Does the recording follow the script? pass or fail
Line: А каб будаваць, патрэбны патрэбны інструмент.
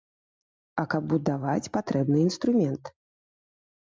fail